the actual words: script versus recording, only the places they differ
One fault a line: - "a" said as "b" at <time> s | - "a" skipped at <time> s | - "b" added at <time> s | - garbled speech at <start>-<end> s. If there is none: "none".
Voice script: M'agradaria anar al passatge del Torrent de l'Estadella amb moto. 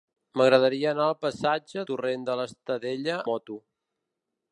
- "del" skipped at 1.8 s
- "amb" skipped at 3.2 s